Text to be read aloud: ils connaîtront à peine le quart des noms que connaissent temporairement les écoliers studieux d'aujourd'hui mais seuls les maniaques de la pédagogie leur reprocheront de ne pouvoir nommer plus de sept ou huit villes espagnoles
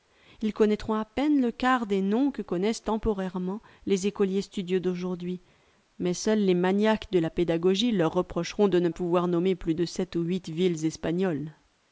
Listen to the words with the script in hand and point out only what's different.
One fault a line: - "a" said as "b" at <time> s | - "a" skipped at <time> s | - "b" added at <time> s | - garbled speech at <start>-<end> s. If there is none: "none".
none